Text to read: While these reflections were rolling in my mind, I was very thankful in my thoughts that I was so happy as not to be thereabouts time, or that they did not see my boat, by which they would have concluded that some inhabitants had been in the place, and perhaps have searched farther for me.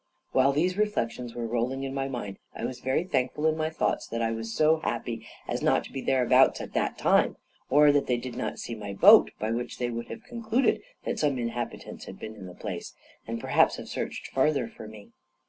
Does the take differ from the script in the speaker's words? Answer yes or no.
yes